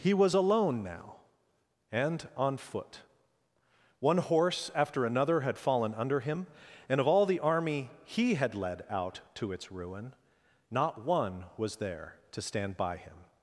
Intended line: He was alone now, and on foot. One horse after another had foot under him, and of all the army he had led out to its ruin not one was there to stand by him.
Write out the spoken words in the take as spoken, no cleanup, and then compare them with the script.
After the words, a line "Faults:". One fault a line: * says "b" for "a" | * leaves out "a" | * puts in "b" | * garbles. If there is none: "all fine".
He was alone now, and on foot. One horse after another had fallen under him, and of all the army he had led out to its ruin not one was there to stand by him.
Faults:
* says "fallen" for "foot"